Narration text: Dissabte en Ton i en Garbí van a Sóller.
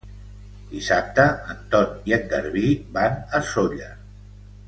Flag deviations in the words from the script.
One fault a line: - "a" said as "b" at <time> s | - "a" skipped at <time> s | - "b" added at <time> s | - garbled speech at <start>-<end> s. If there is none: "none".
none